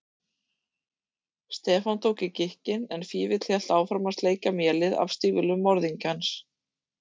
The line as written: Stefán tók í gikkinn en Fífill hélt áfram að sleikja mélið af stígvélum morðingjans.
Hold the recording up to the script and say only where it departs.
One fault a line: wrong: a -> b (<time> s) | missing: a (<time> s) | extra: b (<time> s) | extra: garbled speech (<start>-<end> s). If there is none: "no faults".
no faults